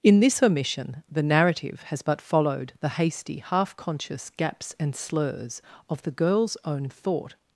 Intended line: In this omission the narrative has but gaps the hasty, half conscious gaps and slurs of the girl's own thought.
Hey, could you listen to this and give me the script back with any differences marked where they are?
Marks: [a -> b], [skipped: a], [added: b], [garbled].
In this omission the narrative has but [gaps -> followed] the hasty, half conscious gaps and slurs of the girl's own thought.